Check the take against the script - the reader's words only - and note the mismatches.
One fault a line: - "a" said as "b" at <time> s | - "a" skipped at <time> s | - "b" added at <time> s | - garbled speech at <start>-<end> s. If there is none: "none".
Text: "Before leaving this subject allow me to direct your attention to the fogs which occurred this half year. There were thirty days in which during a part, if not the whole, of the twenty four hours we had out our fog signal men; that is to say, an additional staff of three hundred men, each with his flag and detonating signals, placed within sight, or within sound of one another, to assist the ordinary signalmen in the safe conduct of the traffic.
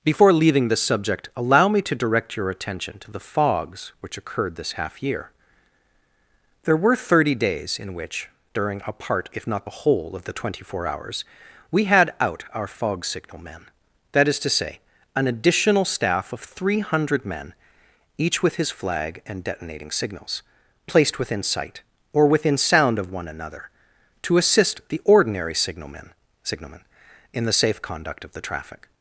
- "signalmen" added at 26.4 s